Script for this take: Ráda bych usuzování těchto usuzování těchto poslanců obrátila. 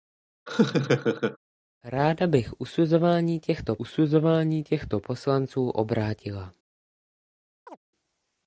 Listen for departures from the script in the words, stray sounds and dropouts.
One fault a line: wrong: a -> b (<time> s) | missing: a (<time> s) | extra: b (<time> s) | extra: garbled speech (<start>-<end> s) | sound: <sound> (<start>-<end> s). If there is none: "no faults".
sound: laugh (0.5-1.4 s)
sound: chirp (7.7-7.8 s)